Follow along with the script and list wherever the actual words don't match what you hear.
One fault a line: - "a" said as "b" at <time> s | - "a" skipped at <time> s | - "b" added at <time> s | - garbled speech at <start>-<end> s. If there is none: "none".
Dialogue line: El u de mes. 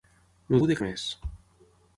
none